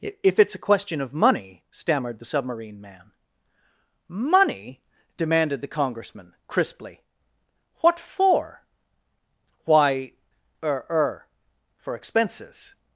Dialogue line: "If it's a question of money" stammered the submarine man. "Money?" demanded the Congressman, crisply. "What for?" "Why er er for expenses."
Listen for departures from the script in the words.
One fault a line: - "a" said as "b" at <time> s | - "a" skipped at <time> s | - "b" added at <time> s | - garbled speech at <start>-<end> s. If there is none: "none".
none